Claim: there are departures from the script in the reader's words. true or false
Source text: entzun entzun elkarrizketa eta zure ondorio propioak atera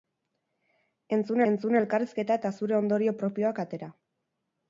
false